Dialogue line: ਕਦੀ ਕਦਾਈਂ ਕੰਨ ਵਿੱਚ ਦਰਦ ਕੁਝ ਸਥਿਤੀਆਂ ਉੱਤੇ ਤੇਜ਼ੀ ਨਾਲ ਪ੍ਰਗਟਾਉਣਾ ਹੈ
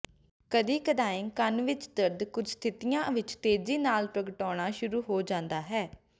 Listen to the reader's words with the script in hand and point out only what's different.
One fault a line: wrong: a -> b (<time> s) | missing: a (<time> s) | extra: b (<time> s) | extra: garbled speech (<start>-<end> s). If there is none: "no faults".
wrong: ਉੱਤੇ -> ਵਿੱਚ (3.1 s)
extra: ਸ਼ੁਰੂ ਹੋ ਜਾਂਦਾ (4.7 s)